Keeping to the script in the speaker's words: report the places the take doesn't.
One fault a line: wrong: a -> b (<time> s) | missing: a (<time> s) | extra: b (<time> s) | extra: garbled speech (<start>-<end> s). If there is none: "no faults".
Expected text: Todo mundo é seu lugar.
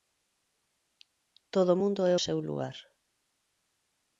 no faults